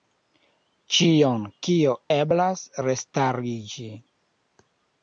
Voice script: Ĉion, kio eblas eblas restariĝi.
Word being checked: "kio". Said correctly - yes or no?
yes